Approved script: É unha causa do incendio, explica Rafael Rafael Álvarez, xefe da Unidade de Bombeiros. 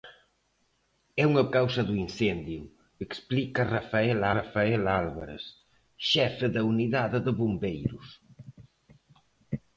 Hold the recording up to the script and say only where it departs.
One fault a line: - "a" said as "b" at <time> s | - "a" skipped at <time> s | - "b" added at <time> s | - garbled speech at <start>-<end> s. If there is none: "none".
none